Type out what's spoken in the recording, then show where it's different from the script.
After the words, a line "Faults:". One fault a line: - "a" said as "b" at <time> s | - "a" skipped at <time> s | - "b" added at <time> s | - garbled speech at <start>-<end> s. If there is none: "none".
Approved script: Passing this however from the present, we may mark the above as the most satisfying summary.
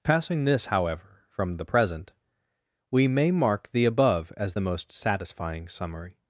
Passing this however from the present, we may mark the above as the most satisfying summary.
Faults:
none